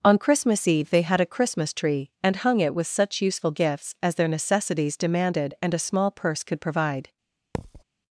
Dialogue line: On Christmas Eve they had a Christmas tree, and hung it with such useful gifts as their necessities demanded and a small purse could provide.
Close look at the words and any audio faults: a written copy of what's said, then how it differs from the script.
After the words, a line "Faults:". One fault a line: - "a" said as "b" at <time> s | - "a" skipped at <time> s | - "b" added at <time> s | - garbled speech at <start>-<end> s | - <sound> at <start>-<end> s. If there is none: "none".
On Christmas Eve they had a Christmas tree, and hung it with such useful gifts as their necessities demanded and a small purse could provide.
Faults:
- thud at 7.5-7.8 s